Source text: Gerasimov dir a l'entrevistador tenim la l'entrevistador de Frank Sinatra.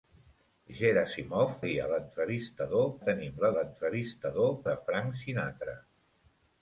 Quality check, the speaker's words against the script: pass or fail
pass